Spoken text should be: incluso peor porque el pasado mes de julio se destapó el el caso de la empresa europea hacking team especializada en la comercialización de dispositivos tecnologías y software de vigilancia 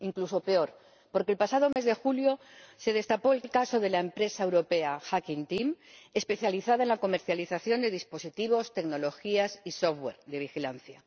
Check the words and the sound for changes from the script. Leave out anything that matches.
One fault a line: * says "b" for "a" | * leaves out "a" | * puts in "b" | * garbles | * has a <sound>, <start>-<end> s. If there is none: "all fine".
* has a dropout, 1.7-1.8 s